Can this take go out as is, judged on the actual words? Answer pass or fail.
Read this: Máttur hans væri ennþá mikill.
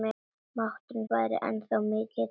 fail